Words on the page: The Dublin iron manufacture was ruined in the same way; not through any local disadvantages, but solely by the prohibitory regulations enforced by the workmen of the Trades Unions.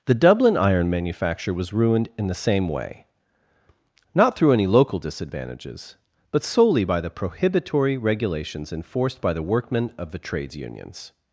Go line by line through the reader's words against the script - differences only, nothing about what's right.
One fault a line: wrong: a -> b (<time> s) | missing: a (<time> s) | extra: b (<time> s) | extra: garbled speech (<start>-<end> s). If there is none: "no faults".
no faults